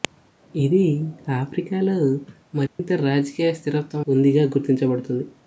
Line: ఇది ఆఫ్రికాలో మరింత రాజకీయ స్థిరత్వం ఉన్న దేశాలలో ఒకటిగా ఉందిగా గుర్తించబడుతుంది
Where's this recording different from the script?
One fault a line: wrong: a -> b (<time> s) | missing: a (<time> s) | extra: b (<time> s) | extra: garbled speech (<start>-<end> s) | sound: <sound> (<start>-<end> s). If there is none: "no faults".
sound: dropout (2.7-2.8 s)
missing: ఉన్న దేశాలలో ఒకటిగా (4.0 s)